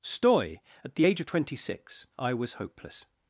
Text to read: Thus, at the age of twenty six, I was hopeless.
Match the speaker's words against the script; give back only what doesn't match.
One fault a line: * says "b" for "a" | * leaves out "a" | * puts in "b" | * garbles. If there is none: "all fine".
* says "Stoy" for "Thus"